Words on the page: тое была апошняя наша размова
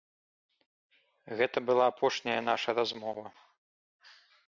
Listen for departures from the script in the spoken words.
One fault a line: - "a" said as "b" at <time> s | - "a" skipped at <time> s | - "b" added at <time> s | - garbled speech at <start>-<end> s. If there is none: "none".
- "тое" said as "гэта" at 1.4 s